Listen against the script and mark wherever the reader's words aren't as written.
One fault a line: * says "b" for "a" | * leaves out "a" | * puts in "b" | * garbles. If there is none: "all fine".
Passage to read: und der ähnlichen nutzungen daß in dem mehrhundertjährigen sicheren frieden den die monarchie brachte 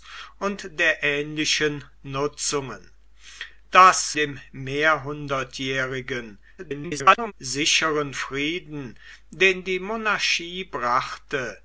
* leaves out "in"
* garbles